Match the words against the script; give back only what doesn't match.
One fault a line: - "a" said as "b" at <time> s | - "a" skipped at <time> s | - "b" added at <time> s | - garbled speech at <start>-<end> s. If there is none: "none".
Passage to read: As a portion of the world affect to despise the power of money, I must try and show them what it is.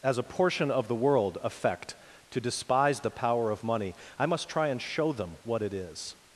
none